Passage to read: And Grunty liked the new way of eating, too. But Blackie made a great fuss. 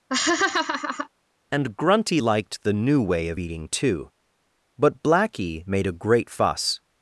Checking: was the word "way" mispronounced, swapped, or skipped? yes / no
no